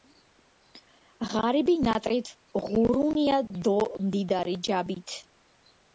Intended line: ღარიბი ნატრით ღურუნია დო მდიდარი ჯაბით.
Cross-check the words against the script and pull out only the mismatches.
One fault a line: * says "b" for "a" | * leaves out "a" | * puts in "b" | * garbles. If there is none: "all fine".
all fine